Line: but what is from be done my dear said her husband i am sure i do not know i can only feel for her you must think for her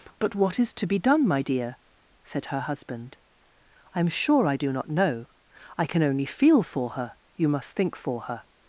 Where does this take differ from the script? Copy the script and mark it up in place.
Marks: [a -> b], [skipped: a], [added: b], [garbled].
but what is [from -> to] be done my dear said her husband i am sure i do not know i can only feel for her you must think for her